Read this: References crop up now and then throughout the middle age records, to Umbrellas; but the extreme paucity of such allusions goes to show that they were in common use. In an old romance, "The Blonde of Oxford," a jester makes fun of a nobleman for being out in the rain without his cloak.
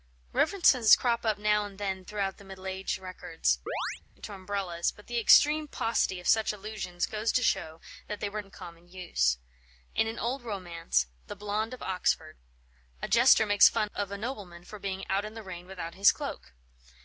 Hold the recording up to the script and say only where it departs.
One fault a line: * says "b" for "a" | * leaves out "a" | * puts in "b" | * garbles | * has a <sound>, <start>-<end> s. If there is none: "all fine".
* has a chirp, 3.7-4.0 s